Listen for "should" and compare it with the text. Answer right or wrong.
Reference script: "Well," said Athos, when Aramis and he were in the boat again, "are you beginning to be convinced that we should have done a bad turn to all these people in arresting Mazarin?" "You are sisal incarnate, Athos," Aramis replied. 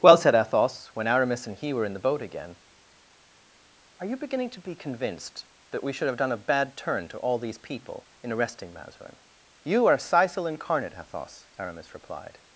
right